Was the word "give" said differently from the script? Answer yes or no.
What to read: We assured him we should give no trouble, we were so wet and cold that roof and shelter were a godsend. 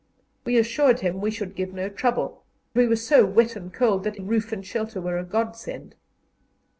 no